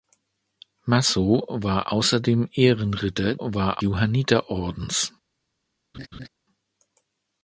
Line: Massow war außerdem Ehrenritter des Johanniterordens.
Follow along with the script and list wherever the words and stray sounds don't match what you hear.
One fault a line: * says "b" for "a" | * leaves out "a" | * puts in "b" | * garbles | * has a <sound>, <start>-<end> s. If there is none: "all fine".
* says "war" for "des"
* has a laugh, 5.9-6.3 s